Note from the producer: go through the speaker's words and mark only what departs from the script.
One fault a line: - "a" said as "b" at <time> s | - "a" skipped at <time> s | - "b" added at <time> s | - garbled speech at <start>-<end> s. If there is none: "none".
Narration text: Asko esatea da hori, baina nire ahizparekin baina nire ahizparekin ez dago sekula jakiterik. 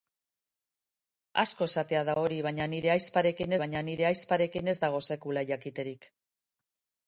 none